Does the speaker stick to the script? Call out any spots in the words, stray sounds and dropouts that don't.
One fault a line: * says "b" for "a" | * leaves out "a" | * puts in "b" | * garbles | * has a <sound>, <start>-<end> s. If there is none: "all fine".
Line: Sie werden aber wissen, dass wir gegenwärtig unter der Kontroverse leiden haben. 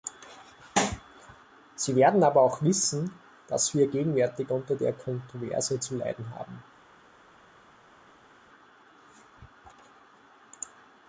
* puts in "auch"
* puts in "zu"